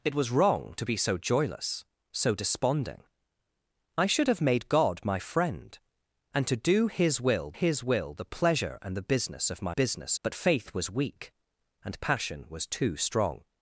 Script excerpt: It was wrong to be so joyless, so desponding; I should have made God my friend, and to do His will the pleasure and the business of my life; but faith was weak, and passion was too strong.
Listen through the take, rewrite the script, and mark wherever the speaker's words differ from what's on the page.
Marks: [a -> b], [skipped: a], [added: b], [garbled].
It was wrong to be so joyless, so desponding; I should have made God my friend, and to do His will [added: His will] the pleasure and the business of my [life; -> business] but faith was weak, and passion was too strong.